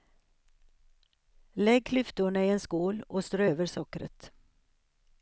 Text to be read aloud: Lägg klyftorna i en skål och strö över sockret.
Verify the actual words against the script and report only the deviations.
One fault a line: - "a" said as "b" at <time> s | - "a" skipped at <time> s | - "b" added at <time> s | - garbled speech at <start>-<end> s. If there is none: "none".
none